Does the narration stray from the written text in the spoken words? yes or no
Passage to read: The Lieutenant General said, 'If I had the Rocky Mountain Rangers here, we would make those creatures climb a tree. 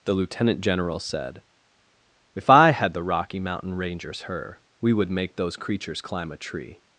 yes